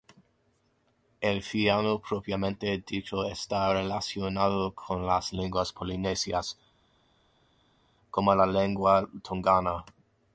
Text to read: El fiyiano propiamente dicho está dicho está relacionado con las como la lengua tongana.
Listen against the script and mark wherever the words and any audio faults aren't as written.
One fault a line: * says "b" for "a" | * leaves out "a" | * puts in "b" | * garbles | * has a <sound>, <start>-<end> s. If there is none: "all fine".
* leaves out "dicho está"
* puts in "lenguas polinesias"